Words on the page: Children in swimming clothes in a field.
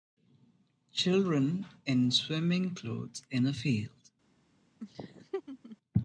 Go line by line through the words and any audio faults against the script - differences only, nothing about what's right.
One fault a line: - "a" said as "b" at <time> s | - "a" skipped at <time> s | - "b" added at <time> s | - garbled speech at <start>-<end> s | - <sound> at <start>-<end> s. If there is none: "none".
- laugh at 4.8-5.8 s